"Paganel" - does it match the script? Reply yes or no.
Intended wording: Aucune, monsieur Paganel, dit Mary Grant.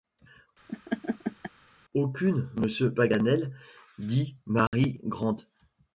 yes